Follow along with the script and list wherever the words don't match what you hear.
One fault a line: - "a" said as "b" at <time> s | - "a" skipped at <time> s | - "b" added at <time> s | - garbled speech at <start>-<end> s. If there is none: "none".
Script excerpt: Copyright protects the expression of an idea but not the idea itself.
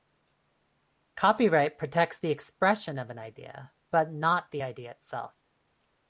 none